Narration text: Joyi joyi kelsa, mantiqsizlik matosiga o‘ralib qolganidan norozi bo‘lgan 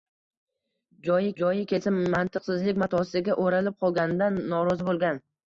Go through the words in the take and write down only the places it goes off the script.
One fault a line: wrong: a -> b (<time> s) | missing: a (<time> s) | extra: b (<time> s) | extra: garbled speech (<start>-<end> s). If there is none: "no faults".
no faults